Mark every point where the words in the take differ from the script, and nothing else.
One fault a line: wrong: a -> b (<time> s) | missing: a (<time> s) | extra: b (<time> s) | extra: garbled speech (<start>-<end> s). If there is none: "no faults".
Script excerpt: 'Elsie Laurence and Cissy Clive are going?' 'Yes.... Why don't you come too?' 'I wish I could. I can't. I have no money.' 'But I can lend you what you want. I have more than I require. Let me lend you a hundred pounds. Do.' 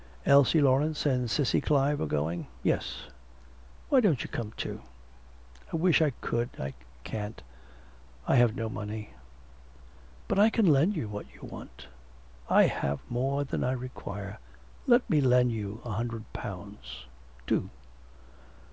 no faults